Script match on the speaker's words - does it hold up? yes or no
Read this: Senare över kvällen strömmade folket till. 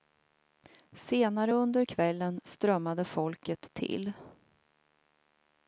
no